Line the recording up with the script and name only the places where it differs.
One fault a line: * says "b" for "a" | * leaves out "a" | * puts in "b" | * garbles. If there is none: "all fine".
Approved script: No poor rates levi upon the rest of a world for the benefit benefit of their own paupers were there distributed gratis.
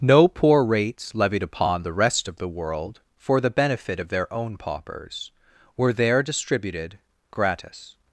* says "levied" for "levi"
* says "the" for "a"
* leaves out "benefit"